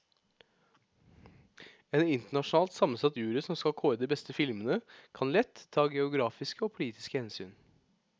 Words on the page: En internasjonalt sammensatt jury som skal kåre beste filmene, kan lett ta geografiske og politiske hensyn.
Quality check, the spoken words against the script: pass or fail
fail